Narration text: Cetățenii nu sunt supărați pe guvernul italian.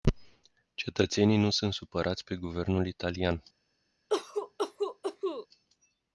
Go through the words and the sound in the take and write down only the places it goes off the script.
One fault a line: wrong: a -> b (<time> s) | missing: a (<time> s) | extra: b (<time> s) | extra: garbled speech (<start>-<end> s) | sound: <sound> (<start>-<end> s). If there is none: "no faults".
sound: cough (4.1-5.5 s)